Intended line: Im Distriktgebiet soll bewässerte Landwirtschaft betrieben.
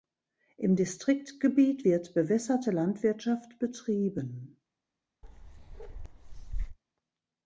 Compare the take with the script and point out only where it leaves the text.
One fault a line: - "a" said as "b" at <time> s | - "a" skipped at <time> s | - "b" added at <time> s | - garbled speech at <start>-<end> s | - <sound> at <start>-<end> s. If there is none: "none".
- "soll" said as "wird" at 1.8 s
- bark at 5.2-6.8 s